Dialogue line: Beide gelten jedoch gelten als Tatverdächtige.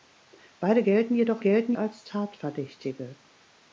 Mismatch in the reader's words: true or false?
false